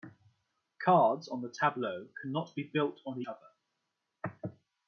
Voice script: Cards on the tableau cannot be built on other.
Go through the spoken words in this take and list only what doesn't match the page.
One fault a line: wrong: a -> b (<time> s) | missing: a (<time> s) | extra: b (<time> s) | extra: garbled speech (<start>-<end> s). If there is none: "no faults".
no faults